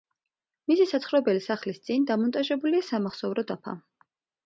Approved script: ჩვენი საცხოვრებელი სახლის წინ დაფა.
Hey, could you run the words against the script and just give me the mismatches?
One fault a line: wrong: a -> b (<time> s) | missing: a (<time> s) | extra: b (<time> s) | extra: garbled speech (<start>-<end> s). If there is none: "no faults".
wrong: ჩვენი -> მისი (0.7 s)
extra: დამონტაჟებულია სამახსოვრო (2.1 s)